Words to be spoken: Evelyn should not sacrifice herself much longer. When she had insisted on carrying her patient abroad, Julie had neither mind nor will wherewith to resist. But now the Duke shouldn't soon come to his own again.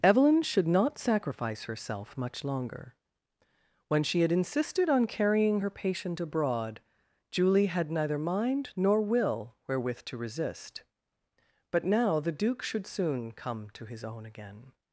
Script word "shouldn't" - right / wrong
wrong